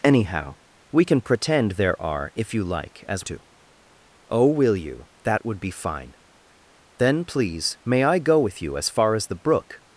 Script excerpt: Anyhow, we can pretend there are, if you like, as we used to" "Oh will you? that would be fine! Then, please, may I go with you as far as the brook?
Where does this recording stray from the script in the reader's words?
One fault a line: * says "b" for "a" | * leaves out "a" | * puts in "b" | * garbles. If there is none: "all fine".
* leaves out "we used"